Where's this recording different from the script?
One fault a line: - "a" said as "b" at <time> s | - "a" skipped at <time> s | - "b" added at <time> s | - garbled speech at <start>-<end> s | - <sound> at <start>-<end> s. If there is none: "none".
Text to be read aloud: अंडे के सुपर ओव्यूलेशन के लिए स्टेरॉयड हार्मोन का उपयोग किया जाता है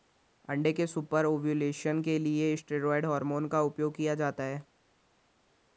none